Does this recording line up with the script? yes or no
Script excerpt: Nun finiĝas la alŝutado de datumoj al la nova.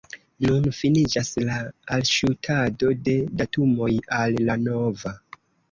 yes